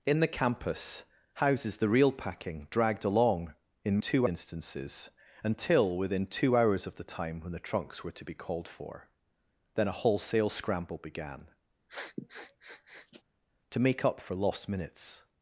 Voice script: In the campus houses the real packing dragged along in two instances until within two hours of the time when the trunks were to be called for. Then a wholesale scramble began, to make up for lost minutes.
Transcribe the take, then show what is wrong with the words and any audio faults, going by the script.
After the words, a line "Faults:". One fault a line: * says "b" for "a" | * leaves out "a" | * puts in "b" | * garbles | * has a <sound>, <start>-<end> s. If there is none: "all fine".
In the campus houses the real packing dragged along in two instances until within two hours of the time when the trunks were to be called for. Then a wholesale scramble began, to make up for lost minutes.
Faults:
* has a sniff, 11.9-13.2 s